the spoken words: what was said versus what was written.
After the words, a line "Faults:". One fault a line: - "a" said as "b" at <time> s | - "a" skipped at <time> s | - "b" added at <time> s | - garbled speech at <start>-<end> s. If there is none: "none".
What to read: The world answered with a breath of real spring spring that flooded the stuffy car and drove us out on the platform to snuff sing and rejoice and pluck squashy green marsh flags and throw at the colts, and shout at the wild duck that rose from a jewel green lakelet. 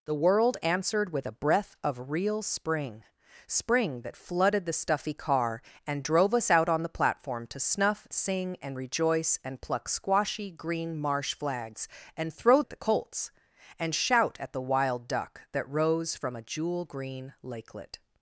The world answered with a breath of real spring spring that flooded the stuffy car and drove us out on the platform to snuff sing and rejoice and pluck squashy green marsh flags and throw at the colts, and shout at the wild duck that rose from a jewel green lakelet.
Faults:
none